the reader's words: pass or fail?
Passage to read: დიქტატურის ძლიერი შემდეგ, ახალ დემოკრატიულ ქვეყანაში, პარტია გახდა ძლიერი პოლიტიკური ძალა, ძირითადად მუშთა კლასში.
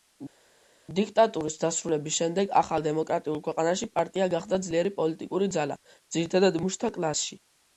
fail